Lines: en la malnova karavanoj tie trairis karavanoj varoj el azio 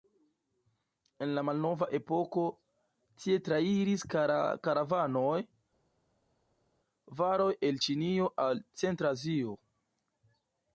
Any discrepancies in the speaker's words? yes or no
yes